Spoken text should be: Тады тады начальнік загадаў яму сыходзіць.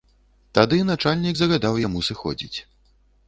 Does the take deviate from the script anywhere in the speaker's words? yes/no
yes